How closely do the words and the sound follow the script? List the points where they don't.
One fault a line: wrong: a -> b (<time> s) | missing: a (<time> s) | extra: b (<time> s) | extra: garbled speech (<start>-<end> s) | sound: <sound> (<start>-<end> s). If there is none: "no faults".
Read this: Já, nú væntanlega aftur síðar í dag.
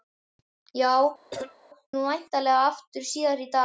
sound: cough (1.3-1.6 s)